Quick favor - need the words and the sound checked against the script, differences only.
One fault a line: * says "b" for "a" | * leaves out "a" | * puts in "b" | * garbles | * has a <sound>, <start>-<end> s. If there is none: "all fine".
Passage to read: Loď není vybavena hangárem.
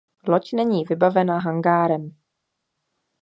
all fine